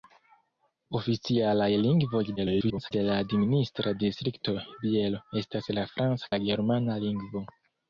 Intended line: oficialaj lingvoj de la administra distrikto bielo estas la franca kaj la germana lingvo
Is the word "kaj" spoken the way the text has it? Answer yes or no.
no